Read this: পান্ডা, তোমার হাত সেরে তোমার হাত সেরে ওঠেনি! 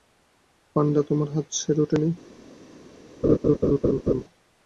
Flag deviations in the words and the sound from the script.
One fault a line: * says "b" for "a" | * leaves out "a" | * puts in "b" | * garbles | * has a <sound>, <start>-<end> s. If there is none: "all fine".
* leaves out "তোমার হাত সেরে"
* has a laugh, 3.2-4.2 s